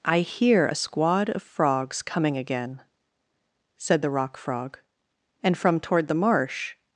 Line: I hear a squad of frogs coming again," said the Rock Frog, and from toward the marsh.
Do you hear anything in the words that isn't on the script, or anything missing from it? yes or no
no